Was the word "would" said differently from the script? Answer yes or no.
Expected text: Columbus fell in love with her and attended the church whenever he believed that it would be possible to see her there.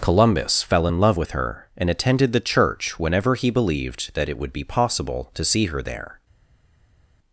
no